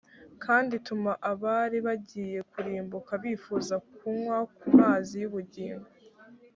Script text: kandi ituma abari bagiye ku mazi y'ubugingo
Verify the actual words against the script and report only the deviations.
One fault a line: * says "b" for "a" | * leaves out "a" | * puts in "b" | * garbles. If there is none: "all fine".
* puts in "kurimbuka bifuza kunywa"